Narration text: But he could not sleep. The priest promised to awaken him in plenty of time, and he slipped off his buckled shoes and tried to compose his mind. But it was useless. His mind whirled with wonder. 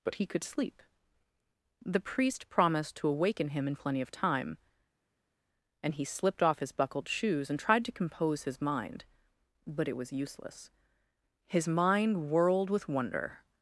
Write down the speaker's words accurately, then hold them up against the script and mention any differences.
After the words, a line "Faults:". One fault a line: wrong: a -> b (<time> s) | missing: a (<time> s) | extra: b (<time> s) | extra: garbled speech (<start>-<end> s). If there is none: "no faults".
But he could sleep. The priest promised to awaken him in plenty of time, and he slipped off his buckled shoes and tried to compose his mind. But it was useless. His mind whirled with wonder.
Faults:
missing: not (0.4 s)